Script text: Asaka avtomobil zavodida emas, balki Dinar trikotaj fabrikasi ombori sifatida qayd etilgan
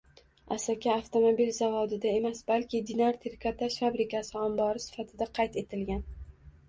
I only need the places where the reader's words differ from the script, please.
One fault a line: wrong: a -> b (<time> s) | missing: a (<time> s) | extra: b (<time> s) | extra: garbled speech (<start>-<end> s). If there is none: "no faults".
no faults